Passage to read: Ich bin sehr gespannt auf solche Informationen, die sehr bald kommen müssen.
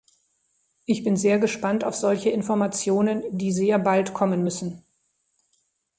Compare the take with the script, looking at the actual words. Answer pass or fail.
pass